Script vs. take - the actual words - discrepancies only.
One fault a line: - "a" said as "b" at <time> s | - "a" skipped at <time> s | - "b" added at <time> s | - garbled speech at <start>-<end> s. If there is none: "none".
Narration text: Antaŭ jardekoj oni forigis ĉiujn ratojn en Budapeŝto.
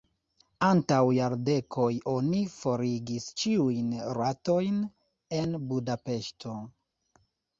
none